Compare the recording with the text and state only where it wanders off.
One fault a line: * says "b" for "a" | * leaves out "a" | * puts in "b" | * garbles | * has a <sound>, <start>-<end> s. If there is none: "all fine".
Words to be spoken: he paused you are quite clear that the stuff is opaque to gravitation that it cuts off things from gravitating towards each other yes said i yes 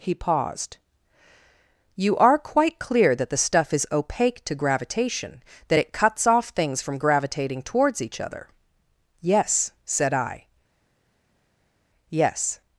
all fine